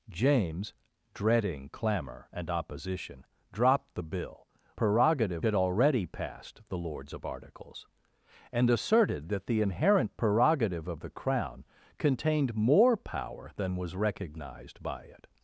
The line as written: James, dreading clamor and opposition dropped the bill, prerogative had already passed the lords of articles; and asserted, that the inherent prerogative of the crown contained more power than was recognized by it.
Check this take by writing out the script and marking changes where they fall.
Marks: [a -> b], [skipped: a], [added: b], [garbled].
James, dreading clamor and opposition dropped the bill, prerogative had already passed the lords of articles; and asserted, that the inherent prerogative of the crown contained more power than was recognized by it.